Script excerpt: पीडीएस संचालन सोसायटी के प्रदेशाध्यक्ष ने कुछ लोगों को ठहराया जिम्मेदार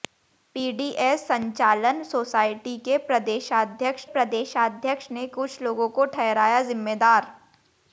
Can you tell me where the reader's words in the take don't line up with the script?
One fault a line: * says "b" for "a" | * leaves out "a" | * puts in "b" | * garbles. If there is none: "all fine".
* puts in "प्रदेशाध्यक्ष"